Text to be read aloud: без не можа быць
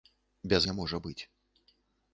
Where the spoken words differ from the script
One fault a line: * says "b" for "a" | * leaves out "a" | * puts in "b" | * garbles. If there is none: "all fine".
all fine